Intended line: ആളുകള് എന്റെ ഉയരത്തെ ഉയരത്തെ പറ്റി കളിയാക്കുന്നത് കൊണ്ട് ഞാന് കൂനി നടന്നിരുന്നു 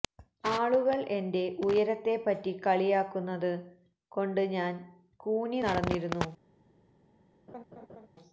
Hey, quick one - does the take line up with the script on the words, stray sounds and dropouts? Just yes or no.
no